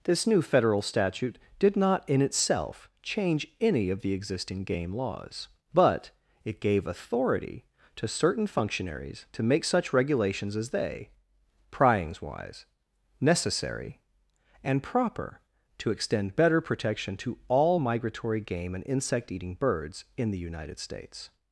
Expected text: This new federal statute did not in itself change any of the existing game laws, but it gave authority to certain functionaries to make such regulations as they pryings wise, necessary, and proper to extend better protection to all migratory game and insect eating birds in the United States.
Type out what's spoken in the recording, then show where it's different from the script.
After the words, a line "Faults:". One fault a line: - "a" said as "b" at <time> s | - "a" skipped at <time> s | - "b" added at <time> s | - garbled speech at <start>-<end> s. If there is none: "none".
This new federal statute did not in itself change any of the existing game laws, but it gave authority to certain functionaries to make such regulations as they pryings wise, necessary, and proper to extend better protection to all migratory game and insect eating birds in the United States.
Faults:
none